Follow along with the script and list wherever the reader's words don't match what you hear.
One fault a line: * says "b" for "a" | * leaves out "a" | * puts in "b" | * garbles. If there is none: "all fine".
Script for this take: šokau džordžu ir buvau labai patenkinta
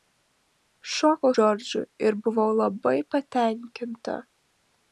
all fine